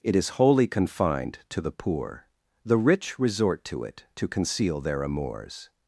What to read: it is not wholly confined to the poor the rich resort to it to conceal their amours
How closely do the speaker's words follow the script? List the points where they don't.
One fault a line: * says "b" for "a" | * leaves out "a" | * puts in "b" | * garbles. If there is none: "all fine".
* leaves out "not"